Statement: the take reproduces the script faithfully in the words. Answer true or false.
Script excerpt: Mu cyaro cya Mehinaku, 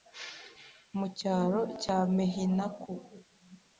true